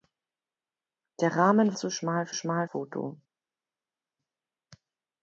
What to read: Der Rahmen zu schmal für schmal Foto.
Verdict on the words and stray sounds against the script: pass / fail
pass